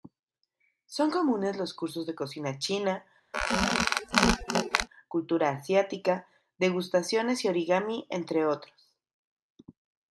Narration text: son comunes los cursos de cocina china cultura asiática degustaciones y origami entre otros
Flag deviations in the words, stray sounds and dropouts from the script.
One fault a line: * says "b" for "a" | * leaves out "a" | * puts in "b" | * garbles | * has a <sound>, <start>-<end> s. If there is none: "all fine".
* has a squeak, 3.3-4.9 s